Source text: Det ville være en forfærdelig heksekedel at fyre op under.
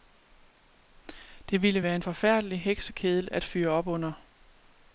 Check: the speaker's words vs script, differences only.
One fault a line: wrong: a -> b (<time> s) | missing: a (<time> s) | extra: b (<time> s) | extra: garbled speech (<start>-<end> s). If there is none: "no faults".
no faults